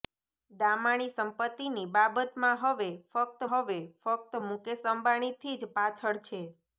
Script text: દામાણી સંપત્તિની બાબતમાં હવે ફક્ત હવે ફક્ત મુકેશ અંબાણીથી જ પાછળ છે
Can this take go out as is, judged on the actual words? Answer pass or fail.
pass